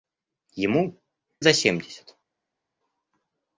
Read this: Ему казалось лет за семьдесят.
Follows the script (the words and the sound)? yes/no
no